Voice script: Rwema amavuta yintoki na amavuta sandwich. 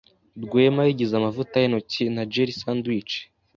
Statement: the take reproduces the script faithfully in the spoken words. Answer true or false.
false